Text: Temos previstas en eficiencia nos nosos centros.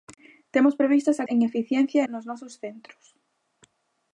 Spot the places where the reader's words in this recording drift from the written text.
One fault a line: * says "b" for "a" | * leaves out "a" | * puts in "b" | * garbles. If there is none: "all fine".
all fine